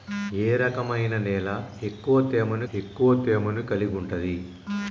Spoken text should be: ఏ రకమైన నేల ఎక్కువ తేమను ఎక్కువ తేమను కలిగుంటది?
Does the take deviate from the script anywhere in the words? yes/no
no